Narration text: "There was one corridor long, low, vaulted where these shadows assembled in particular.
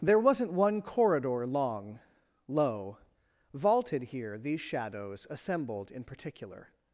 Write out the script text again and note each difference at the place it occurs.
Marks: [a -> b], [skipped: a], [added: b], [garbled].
"There [was -> wasn't] one corridor long, low, vaulted [where -> here] these shadows assembled in particular.